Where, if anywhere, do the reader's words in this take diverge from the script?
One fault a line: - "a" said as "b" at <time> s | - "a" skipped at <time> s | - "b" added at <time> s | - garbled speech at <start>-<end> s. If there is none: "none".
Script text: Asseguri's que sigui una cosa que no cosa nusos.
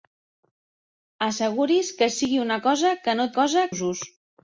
none